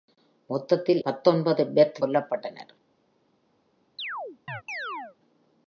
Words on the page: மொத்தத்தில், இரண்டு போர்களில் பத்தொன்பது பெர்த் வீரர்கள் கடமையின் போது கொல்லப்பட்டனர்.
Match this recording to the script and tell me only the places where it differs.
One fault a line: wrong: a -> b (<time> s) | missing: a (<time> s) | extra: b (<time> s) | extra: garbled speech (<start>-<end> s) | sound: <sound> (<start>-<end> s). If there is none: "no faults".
missing: இரண்டு போர்களில் (1.0 s)
missing: வீரர்கள் கடமையின் போது (2.0 s)
sound: chirp (4.0-5.2 s)